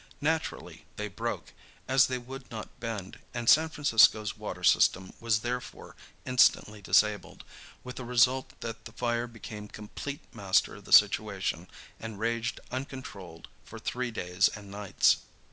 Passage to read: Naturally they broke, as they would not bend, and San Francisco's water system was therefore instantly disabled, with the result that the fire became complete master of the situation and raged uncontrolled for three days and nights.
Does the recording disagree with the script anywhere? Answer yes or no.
no